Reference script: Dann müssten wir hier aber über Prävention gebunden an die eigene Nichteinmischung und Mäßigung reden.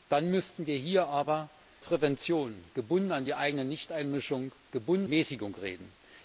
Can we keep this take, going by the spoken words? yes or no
no